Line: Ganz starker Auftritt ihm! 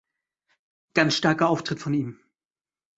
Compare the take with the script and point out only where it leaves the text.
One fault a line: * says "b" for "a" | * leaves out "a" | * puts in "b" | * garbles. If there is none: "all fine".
* puts in "von"